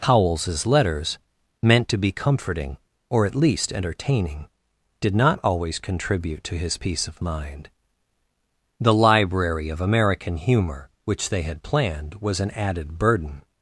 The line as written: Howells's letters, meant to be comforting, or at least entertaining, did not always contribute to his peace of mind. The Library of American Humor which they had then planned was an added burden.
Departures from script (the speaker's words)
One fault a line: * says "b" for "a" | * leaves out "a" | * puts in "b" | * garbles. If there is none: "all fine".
* leaves out "then"